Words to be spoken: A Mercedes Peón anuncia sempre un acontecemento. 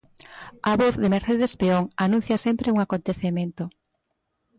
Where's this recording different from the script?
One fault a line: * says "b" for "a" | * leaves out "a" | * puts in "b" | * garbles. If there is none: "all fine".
* puts in "voz de"